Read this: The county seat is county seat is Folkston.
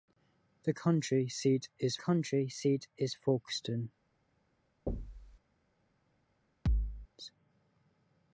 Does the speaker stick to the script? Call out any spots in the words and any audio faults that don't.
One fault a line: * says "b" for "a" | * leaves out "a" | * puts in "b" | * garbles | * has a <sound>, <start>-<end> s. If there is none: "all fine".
* has a thud, 4.9-5.4 s
* has a thud, 6.7-7.1 s